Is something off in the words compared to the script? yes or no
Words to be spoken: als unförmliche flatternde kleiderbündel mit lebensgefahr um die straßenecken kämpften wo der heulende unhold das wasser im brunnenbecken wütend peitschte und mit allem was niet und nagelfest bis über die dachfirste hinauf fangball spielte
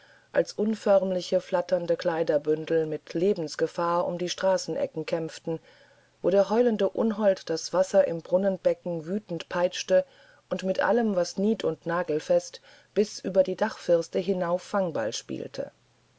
no